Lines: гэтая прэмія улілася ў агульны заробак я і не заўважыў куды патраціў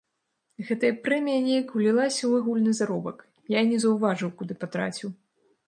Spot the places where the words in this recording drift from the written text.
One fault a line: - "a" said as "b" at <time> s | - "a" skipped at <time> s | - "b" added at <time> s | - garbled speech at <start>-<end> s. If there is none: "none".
- "неяк" added at 1.5 s